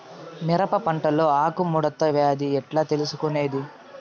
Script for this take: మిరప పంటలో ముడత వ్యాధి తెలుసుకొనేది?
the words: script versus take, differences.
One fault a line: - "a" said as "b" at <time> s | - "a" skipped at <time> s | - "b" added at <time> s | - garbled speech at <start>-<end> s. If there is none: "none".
- "ఆకు" added at 1.4 s
- "ఎట్లా" added at 2.6 s